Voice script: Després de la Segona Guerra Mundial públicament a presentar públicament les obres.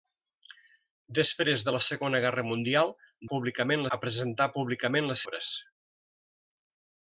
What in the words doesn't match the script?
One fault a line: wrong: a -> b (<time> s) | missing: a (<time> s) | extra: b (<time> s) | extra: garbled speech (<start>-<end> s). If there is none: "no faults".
no faults